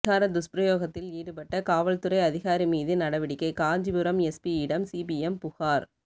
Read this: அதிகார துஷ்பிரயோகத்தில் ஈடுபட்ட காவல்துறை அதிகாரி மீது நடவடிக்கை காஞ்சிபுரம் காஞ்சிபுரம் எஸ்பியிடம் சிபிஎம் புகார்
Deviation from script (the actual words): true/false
true